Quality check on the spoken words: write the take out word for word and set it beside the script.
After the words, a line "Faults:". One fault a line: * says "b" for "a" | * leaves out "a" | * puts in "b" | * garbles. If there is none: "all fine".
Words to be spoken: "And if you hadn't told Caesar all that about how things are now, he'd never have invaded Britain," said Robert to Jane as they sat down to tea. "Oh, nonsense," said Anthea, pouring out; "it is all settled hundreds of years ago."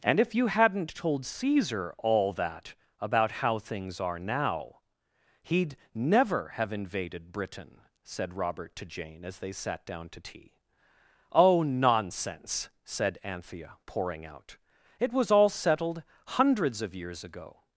"And if you hadn't told Caesar all that about how things are now, he'd never have invaded Britain," said Robert to Jane as they sat down to tea. "Oh, nonsense," said Anthea, pouring out; "it was all settled hundreds of years ago."
Faults:
* says "was" for "is"